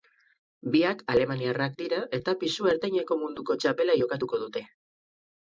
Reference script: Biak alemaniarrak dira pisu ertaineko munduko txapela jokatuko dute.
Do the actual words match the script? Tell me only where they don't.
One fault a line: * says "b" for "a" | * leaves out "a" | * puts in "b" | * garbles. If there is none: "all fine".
* puts in "eta"